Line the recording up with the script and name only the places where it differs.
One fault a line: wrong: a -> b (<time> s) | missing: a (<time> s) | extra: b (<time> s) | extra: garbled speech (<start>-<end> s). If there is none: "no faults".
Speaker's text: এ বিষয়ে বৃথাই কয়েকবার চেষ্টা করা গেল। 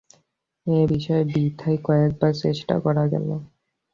no faults